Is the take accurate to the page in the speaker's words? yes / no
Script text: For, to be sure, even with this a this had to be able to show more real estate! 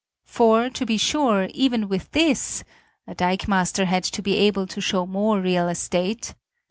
no